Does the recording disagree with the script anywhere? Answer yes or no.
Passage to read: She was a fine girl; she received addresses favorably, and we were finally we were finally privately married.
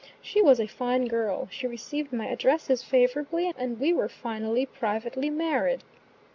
yes